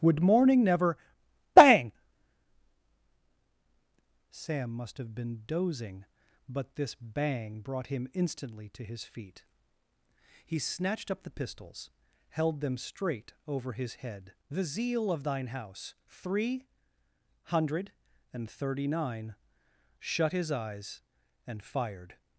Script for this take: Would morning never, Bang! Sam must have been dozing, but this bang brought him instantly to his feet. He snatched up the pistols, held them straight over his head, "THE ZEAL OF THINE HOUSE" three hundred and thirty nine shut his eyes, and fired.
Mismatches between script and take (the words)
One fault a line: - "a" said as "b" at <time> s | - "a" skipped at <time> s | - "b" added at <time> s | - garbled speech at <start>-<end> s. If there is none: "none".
none